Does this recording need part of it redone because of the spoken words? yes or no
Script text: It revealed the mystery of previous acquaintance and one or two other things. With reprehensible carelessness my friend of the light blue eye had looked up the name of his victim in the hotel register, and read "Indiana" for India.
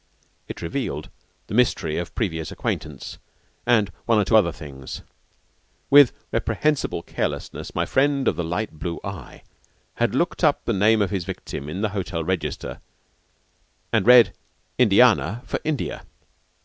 no